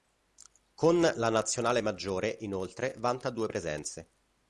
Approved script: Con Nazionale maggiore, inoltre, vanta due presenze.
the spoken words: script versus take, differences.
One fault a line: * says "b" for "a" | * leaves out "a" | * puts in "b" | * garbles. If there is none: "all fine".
* puts in "la"